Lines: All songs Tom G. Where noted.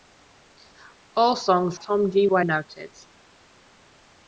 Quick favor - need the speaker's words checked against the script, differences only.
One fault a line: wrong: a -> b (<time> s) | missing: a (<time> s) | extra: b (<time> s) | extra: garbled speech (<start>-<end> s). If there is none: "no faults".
no faults